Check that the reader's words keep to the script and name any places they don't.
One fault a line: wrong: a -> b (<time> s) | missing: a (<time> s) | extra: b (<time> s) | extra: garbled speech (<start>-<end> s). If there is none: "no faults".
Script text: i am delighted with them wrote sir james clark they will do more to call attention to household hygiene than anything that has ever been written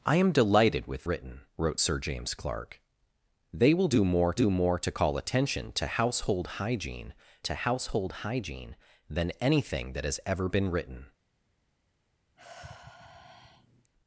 wrong: them -> written (1.1 s)
extra: do more (4.3 s)
extra: to household hygiene (7.4 s)